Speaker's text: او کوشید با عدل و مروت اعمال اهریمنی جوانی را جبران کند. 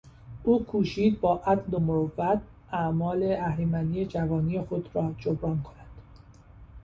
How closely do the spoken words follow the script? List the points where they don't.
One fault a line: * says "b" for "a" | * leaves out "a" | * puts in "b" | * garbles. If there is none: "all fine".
* puts in "خود"